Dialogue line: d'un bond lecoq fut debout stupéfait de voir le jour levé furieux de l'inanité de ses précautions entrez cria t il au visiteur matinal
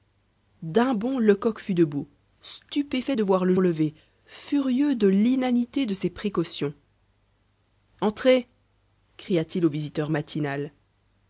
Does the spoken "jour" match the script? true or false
false